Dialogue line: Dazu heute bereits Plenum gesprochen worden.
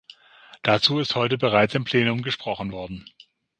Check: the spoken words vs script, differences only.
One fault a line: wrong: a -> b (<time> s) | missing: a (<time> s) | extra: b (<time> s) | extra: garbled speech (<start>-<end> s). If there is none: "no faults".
extra: ist (1.0 s)
extra: im (1.8 s)